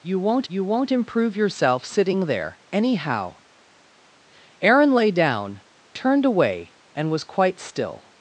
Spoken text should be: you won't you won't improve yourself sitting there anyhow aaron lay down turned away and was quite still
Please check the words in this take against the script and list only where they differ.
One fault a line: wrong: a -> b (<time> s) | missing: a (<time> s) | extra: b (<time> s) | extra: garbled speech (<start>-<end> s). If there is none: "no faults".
no faults